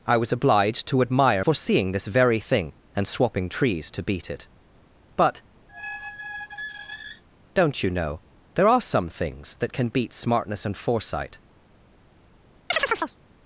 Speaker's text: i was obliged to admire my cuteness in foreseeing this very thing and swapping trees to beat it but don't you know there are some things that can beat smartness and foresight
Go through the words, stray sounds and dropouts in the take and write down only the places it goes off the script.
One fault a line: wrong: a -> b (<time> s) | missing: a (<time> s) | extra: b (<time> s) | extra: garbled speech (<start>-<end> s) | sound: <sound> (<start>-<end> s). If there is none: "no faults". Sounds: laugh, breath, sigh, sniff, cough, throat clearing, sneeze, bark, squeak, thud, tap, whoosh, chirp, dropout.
missing: my cuteness in (1.4 s)
sound: squeak (5.7-7.2 s)
sound: chirp (12.7-13.2 s)